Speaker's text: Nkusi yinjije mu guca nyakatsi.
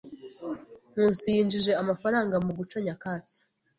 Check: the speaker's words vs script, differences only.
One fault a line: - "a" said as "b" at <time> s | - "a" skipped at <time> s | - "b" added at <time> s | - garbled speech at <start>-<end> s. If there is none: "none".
- "amafaranga" added at 1.8 s